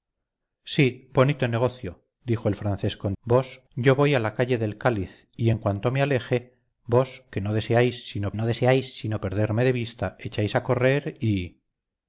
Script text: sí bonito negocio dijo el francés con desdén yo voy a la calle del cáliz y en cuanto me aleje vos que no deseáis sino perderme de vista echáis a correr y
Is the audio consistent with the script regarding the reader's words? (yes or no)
no